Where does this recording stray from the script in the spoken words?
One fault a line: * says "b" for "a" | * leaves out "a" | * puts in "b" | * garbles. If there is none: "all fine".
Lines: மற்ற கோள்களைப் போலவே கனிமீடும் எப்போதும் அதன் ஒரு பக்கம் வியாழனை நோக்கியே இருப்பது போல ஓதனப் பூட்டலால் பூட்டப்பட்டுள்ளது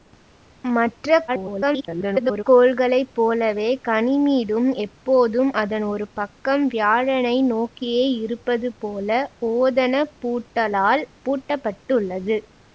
* garbles